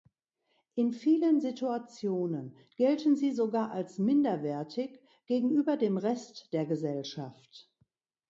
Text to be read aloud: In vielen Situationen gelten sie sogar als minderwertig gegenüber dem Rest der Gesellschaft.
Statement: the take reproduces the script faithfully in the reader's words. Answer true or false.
true